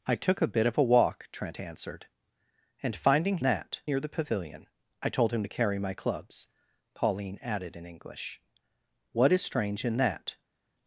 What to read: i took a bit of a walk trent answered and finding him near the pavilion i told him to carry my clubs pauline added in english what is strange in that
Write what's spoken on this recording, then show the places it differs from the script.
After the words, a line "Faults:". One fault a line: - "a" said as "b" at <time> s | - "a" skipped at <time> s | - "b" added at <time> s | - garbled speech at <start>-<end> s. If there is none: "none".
i took a bit of a walk trent answered and finding that near the pavilion i told him to carry my clubs pauline added in english what is strange in that
Faults:
- "him" said as "that" at 3.4 s